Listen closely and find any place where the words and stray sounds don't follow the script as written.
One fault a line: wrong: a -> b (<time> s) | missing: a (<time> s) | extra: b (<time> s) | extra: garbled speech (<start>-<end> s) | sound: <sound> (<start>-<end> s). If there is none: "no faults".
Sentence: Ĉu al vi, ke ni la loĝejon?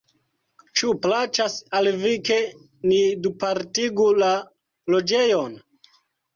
extra: plaĉas (1.1 s)
extra: dupartigu (3.3 s)